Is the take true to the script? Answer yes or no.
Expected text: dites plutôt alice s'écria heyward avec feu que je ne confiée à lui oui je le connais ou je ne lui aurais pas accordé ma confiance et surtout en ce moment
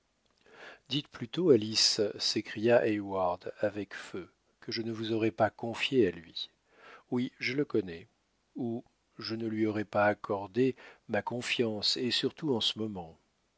no